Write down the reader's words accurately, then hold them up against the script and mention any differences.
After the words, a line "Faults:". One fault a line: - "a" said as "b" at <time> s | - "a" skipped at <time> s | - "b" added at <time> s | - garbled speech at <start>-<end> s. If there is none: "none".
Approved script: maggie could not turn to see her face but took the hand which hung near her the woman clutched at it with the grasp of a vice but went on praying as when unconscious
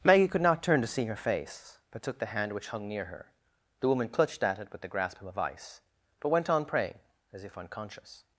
maggie could not turn to see her face but took the hand which hung near her the woman clutched at it with the grasp of a vice but went on praying as if unconscious
Faults:
- "when" said as "if" at 7.4 s